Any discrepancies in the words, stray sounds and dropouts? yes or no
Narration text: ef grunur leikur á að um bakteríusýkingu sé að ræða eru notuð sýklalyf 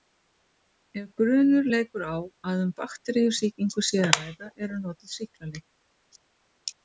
no